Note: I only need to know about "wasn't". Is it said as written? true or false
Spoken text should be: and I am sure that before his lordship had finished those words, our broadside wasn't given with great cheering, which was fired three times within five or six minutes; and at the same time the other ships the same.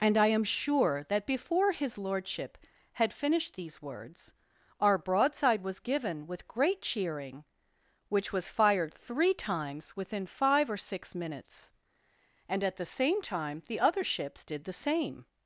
false